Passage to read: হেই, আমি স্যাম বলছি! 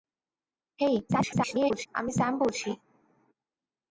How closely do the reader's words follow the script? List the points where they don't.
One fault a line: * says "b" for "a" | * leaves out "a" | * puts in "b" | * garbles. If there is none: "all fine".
* garbles